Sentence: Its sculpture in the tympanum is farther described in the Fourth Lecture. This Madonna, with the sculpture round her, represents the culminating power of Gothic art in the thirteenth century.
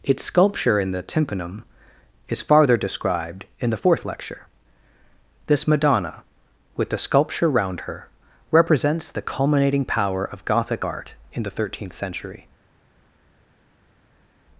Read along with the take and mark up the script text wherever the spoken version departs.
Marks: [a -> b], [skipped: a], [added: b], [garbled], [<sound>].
Its sculpture in the tympanum is farther described in the Fourth Lecture. This Madonna, with the sculpture round her, represents the culminating power of Gothic art in the thirteenth century.